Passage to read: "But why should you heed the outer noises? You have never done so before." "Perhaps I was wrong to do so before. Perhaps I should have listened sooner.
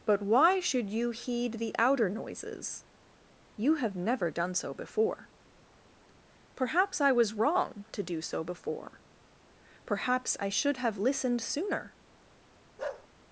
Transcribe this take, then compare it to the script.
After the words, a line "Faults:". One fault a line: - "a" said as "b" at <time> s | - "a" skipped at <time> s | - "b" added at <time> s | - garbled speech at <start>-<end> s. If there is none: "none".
"But why should you heed the outer noises? You have never done so before." "Perhaps I was wrong to do so before. Perhaps I should have listened sooner.
Faults:
none